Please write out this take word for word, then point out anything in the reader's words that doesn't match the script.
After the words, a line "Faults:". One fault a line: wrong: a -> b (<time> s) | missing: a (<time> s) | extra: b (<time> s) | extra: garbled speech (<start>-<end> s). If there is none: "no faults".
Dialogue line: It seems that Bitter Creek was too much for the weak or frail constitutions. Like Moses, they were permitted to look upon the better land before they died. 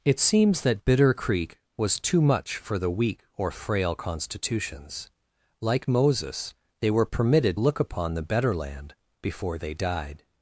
It seems that Bitter Creek was too much for the weak or frail constitutions. Like Moses, they were permitted look upon the better land before they died.
Faults:
missing: to (7.6 s)